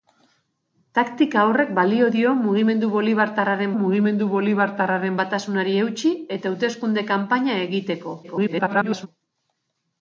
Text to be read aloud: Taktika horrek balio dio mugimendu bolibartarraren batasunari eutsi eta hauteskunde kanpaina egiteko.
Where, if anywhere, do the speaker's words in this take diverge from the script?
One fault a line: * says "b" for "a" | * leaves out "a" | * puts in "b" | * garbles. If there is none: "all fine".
* puts in "mugimendu bolibartarraren"
* garbles